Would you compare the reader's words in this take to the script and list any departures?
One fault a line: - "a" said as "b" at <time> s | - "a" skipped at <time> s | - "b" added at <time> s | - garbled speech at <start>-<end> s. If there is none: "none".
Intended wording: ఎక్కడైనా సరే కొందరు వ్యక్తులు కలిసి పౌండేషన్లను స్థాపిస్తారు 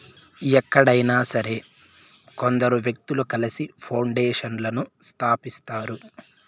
none